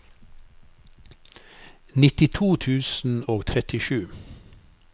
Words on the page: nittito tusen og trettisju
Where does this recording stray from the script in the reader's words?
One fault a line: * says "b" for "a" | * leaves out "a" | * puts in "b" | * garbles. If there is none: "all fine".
all fine